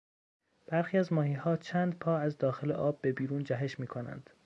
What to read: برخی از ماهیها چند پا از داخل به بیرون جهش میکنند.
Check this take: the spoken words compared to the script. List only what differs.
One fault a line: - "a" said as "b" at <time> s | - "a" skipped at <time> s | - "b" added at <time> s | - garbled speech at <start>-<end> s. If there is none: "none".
- "آب" added at 2.7 s